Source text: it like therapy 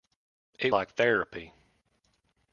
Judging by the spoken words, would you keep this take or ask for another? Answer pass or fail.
pass